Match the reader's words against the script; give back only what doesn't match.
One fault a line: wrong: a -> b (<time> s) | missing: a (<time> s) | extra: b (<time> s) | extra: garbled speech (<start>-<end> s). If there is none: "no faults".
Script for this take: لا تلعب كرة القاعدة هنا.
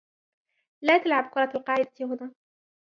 no faults